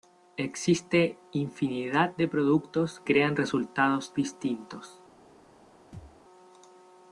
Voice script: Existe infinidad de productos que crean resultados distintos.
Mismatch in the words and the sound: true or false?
true